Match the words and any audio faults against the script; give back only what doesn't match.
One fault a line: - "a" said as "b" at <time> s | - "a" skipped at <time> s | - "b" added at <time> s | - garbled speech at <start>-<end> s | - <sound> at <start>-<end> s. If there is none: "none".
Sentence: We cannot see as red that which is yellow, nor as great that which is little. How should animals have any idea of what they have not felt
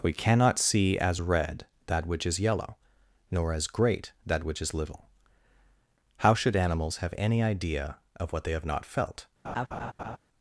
- laugh at 9.4-10.2 s